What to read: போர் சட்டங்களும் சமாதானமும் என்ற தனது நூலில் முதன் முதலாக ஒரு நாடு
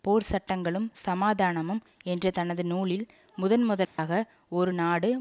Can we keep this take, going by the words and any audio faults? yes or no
no